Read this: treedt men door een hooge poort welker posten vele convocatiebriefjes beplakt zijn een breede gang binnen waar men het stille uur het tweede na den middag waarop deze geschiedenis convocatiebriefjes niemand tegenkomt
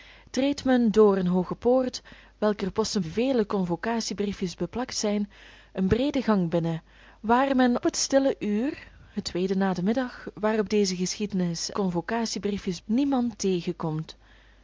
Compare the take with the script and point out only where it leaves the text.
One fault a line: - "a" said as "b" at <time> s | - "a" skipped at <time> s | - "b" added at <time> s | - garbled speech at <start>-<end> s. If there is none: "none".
none